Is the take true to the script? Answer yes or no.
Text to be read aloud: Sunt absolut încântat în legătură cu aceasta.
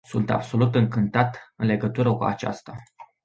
yes